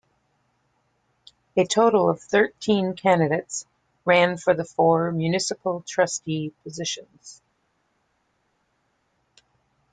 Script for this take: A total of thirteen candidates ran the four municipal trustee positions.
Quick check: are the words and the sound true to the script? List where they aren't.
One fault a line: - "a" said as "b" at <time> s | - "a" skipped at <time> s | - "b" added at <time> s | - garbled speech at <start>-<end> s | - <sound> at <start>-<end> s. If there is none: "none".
- "for" added at 4.4 s